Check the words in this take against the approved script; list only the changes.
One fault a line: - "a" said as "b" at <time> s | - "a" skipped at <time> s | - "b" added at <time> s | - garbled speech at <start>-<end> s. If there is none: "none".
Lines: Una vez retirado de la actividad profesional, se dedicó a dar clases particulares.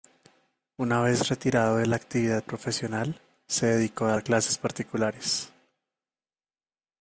none